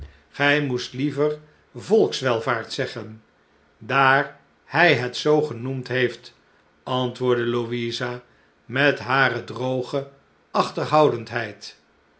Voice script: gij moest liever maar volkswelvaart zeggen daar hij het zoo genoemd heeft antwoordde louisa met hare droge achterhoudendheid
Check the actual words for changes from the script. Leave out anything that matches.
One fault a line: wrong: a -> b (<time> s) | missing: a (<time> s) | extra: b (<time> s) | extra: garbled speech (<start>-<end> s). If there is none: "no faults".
missing: maar (1.4 s)